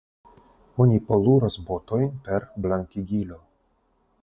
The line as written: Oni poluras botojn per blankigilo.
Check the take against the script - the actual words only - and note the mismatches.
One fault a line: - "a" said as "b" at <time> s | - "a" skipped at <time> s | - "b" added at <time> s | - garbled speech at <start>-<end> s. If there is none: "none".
none